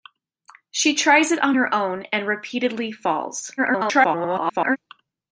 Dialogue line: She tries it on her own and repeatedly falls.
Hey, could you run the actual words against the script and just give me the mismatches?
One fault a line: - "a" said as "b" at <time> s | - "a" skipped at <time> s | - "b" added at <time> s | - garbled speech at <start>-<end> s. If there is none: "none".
- garbled speech at 3.6-4.8 s